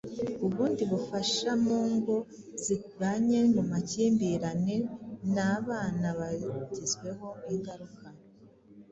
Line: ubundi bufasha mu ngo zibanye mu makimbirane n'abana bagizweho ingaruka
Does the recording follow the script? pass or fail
pass